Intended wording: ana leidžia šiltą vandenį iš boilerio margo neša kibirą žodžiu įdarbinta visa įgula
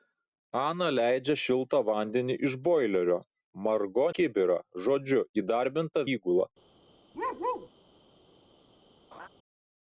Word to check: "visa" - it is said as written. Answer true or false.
false